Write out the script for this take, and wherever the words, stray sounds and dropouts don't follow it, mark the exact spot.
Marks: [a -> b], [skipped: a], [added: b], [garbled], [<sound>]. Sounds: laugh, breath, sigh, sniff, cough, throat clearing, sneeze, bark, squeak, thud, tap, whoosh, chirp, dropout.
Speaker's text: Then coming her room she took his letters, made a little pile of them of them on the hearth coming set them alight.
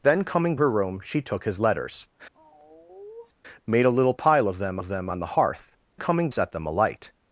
Then coming her room she took his letters, [sigh] made a little pile of them of them on the hearth coming set them alight.